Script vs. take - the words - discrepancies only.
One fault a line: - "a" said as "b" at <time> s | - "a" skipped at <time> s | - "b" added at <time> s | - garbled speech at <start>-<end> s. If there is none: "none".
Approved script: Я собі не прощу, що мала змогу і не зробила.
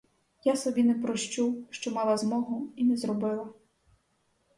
none